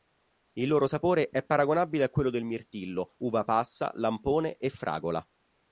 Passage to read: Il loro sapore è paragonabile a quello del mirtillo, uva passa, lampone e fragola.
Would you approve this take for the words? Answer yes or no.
yes